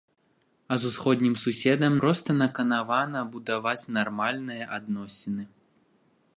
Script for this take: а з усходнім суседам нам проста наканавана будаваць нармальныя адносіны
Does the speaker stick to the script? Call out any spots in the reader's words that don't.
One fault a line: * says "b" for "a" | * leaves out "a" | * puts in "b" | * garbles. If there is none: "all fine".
* leaves out "нам"